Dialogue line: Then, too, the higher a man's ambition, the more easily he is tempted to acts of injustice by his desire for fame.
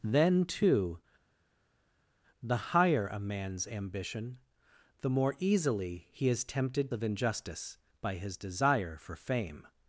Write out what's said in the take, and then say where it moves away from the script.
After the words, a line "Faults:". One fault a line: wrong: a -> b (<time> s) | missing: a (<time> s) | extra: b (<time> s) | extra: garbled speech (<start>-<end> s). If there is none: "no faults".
Then, too, the higher a man's ambition, the more easily he is tempted of injustice by his desire for fame.
Faults:
missing: to acts (6.9 s)